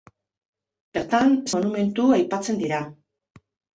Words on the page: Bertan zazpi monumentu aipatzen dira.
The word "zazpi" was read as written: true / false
false